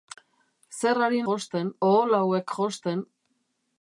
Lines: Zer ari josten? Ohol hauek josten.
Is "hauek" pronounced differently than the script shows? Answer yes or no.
no